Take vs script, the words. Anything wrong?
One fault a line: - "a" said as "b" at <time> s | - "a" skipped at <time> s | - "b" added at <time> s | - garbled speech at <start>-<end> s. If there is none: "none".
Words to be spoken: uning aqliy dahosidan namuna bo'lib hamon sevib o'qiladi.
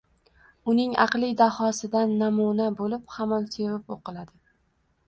none